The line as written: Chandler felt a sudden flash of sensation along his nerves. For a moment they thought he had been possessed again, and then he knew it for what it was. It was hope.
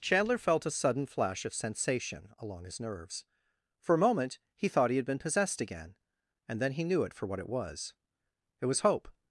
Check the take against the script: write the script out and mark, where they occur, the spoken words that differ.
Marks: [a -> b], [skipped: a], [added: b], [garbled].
Chandler felt a sudden flash of sensation along his nerves. For a moment [they -> he] thought he had been possessed again, and then he knew it for what it was. It was hope.